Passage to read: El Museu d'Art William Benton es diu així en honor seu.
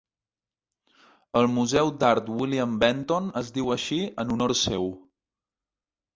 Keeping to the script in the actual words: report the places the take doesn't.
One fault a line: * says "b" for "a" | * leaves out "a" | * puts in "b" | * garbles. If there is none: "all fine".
all fine